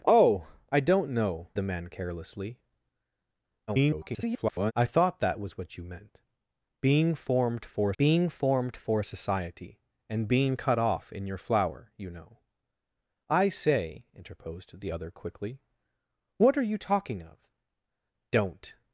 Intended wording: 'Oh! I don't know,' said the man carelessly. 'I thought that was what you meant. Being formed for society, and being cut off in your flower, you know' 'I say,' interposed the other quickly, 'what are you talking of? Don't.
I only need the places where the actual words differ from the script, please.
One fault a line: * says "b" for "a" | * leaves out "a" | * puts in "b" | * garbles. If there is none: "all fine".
* leaves out "said"
* garbles
* puts in "being formed for"